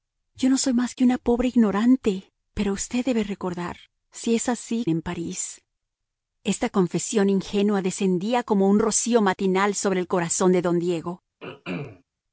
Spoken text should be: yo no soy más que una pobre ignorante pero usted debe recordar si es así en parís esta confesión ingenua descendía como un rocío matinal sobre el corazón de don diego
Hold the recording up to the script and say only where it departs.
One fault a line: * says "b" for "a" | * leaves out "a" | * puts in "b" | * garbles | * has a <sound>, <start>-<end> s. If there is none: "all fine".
* has a throat clearing, 11.4-12.0 s